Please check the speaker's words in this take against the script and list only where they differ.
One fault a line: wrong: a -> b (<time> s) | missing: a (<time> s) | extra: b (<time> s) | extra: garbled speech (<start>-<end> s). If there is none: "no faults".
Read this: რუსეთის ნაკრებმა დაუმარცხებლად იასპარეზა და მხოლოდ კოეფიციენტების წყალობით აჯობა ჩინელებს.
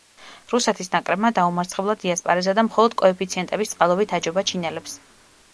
no faults